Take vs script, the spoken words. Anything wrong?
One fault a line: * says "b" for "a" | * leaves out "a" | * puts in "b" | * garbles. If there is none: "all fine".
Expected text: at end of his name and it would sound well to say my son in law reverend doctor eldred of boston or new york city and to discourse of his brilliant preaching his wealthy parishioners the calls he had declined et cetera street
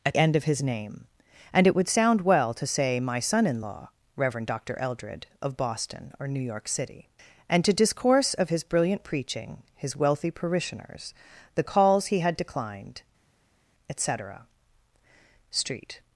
all fine